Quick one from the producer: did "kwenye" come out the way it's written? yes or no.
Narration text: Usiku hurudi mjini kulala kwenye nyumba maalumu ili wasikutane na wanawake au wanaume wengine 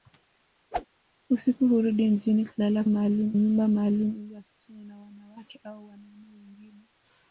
no